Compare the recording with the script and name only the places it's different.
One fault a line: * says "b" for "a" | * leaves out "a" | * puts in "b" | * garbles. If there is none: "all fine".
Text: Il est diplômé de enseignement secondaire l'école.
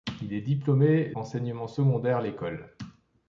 * leaves out "de"